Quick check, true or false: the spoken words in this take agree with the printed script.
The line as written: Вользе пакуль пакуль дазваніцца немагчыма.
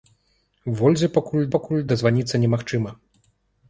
true